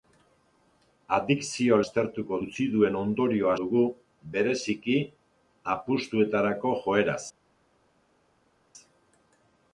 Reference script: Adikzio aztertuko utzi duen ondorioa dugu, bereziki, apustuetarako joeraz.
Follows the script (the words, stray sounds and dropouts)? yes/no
yes